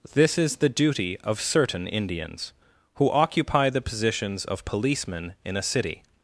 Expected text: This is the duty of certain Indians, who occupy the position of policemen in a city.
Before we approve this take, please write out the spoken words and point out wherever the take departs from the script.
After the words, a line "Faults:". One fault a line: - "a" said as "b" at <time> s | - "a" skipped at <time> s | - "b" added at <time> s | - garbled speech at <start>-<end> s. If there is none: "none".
This is the duty of certain Indians, who occupy the positions of policemen in a city.
Faults:
- "position" said as "positions" at 3.8 s